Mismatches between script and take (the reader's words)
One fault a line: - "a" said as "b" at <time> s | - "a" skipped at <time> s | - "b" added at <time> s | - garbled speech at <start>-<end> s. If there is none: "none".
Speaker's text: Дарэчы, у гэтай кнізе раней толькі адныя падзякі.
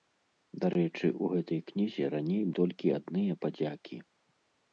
none